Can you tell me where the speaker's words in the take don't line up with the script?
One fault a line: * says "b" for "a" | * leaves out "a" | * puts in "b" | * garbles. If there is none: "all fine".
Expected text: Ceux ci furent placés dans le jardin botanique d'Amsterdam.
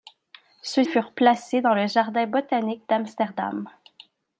* leaves out "ci"